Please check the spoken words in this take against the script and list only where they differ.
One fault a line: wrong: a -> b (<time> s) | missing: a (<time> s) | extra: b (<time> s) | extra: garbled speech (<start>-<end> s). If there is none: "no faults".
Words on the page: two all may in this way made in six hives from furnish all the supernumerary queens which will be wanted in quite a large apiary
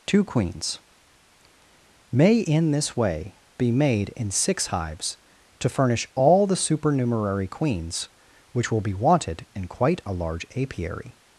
wrong: all -> queens (0.2 s)
extra: be (3.6 s)
wrong: from -> to (5.6 s)